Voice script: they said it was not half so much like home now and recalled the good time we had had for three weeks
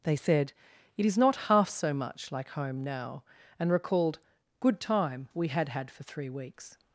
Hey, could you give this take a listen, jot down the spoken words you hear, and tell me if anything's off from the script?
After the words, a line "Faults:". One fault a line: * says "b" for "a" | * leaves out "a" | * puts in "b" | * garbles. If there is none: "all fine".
they said it is not half so much like home now and recalled good time we had had for three weeks
Faults:
* says "is" for "was"
* leaves out "the"